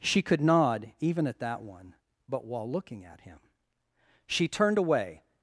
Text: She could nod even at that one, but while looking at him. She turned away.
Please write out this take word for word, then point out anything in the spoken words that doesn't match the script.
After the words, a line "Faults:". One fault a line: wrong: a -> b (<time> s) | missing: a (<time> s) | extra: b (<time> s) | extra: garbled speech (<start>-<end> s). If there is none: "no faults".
She could nod even at that one, but while looking at him. She turned away.
Faults:
no faults